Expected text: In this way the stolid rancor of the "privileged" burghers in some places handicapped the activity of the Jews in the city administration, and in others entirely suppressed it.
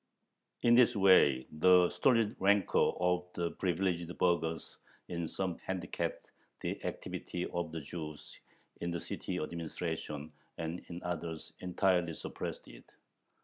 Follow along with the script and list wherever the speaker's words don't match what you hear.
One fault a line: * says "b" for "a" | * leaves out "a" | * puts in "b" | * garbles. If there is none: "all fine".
* leaves out "places"